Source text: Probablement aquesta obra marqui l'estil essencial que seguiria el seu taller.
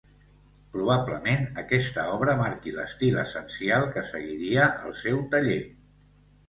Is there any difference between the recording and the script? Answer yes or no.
no